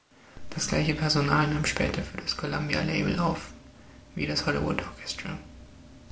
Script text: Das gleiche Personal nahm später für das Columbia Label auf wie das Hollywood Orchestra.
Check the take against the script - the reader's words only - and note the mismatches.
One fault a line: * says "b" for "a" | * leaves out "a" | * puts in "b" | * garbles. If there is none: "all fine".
all fine